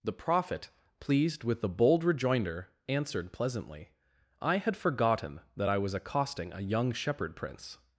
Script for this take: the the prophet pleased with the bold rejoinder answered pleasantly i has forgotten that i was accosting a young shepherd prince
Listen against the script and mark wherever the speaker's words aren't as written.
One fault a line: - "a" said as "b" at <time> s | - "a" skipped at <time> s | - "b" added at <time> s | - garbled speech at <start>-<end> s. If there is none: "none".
- "the" skipped at 0.1 s
- "has" said as "had" at 4.6 s